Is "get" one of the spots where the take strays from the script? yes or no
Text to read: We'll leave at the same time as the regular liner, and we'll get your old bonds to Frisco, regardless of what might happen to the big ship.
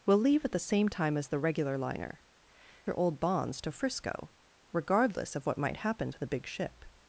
yes